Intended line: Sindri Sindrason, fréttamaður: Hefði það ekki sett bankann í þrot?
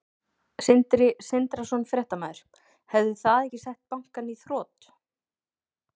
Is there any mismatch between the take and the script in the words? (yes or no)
no